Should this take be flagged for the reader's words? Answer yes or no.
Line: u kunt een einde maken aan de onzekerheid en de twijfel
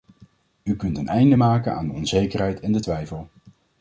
no